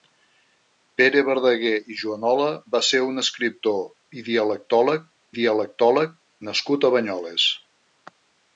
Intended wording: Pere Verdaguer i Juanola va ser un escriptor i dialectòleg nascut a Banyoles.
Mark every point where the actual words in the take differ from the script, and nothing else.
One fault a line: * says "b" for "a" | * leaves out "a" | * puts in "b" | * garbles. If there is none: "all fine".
* puts in "dialectòleg"